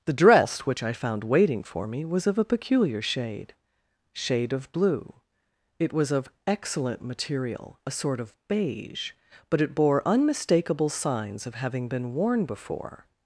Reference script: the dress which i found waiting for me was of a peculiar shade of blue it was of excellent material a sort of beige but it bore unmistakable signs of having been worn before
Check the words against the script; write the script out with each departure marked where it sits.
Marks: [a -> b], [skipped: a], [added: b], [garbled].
the dress which i found waiting for me was of a peculiar shade [added: shade] of blue it was of excellent material a sort of beige but it bore unmistakable signs of having been worn before